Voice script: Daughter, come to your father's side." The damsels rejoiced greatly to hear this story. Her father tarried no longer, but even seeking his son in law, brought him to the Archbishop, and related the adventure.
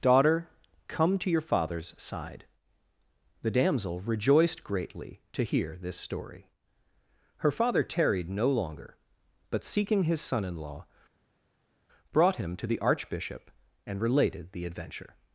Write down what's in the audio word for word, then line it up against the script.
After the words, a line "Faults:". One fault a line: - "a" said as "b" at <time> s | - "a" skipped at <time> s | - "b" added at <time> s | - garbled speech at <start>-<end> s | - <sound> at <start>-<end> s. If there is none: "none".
Daughter, come to your father's side." The damsel rejoiced greatly to hear this story. Her father tarried no longer, but seeking his son in law, brought him to the Archbishop, and related the adventure.
Faults:
- "damsels" said as "damsel" at 3.5 s
- "even" skipped at 9.6 s